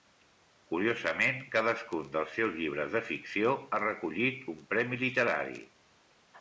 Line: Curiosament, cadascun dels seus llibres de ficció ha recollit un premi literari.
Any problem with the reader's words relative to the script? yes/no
no